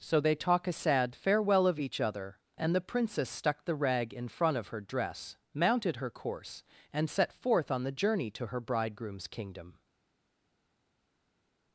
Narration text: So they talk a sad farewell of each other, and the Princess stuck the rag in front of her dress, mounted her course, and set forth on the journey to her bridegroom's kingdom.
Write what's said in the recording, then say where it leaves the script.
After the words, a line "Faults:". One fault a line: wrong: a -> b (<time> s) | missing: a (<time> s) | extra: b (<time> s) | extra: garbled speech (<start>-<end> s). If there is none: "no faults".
So they talk a sad farewell of each other, and the Princess stuck the rag in front of her dress, mounted her course, and set forth on the journey to her bridegroom's kingdom.
Faults:
no faults